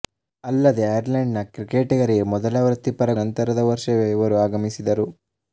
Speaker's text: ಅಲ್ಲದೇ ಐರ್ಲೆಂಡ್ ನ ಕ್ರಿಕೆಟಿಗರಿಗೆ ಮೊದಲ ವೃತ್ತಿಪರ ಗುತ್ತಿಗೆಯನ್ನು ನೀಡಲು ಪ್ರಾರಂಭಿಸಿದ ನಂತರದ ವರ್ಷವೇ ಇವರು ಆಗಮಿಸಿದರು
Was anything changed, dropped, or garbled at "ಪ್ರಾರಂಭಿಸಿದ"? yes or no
yes